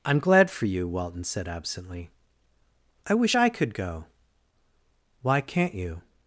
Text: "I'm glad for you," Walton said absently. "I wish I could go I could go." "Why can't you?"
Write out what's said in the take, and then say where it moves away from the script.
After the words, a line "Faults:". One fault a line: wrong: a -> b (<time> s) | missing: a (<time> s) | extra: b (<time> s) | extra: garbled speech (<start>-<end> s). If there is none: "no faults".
"I'm glad for you," Walton said absently. "I wish I could go." "Why can't you?"
Faults:
missing: I could go (4.1 s)